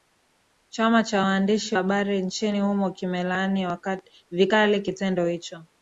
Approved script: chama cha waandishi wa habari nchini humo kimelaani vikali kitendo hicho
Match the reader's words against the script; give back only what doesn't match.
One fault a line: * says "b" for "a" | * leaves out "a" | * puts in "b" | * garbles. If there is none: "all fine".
* leaves out "wa"